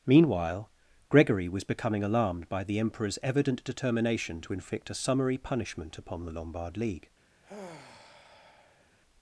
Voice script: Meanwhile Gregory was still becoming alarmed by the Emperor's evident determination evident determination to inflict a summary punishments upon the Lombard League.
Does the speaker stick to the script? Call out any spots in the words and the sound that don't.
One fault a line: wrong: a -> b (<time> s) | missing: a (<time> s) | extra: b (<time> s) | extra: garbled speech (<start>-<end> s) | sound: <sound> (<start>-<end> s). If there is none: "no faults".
missing: still (1.6 s)
missing: evident determination (4.4 s)
wrong: punishments -> punishment (5.4 s)
sound: sigh (7.4-8.9 s)